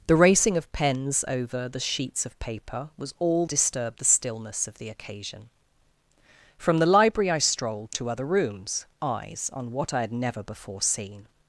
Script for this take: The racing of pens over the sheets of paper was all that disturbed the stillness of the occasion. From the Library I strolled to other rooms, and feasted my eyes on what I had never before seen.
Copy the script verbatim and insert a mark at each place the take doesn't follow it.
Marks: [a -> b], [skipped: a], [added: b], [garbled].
The racing of pens over the sheets of paper was all [skipped: that] disturbed the stillness of the occasion. From the Library I strolled to other rooms, [skipped: and feasted my] eyes on what I had never before seen.